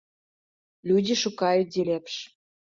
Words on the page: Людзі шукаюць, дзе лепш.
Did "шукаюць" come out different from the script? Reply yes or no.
no